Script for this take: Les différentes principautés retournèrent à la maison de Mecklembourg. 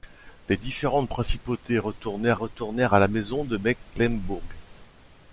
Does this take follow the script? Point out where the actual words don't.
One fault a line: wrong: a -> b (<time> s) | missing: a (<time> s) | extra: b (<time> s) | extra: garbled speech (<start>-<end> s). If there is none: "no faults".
extra: retournèrent (2.3 s)